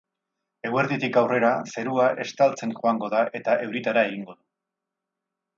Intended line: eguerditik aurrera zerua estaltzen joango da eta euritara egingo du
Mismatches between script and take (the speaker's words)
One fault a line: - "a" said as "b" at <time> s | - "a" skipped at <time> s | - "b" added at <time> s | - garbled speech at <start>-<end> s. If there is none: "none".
none